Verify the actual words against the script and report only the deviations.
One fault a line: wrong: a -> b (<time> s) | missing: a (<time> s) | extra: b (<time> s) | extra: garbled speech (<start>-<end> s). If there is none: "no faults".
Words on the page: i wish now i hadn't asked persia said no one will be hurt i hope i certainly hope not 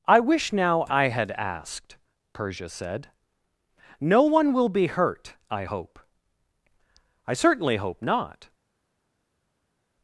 wrong: hadn't -> had (1.1 s)